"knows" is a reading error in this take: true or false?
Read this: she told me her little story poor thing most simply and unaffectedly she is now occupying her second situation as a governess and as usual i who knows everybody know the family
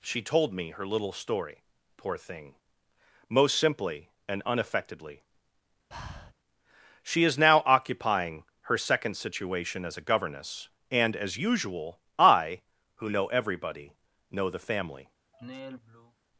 true